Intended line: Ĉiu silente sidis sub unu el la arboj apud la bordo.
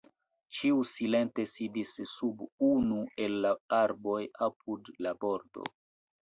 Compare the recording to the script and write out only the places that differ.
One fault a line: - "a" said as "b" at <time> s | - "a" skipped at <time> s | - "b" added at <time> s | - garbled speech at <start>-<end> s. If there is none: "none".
none